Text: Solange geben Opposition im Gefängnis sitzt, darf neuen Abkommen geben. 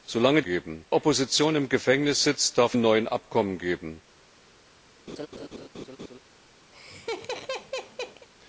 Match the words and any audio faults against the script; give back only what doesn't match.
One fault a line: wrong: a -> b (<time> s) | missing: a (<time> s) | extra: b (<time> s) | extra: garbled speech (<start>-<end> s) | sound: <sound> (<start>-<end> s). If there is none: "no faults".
sound: laugh (5.1-6.2 s)
sound: laugh (6.7-8.3 s)